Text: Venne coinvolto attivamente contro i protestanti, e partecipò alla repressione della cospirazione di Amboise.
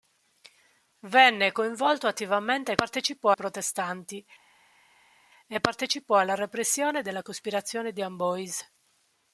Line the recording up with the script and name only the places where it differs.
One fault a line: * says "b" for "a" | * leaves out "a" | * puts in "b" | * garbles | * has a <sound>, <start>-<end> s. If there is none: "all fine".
* says "partecipò" for "contro"